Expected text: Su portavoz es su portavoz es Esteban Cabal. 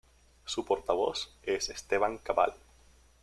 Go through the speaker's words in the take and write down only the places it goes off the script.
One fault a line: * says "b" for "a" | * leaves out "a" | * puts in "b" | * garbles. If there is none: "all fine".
* leaves out "su portavoz es"